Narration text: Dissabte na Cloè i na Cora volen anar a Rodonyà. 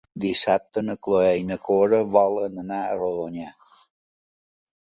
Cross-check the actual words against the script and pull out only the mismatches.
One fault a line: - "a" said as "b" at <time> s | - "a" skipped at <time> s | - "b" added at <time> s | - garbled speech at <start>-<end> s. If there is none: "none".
none